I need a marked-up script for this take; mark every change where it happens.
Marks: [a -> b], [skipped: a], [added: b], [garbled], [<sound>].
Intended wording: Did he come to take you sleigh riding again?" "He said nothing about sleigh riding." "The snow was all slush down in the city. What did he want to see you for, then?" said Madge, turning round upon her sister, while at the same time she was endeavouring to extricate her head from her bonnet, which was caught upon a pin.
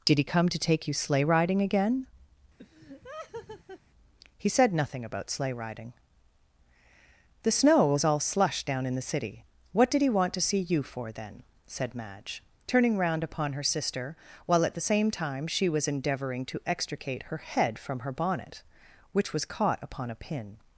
Did he come to take you sleigh riding again?" [laugh] "He said nothing about sleigh riding." "The snow was all slush down in the city. What did he want to see you for, then?" said Madge, turning round upon her sister, while at the same time she was endeavouring to extricate her head from her bonnet, which was caught upon a pin.